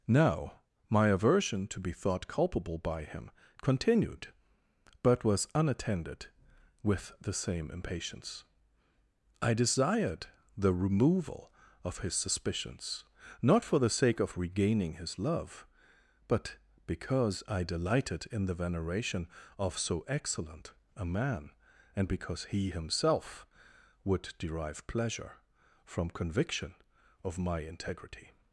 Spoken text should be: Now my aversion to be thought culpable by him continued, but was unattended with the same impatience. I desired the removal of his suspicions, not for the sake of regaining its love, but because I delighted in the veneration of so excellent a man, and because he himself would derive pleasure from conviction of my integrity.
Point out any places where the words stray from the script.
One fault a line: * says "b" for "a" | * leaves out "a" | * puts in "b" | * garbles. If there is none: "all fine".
* says "his" for "its"